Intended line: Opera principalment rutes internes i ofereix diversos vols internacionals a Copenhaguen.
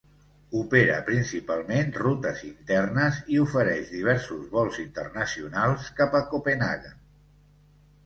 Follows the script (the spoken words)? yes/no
no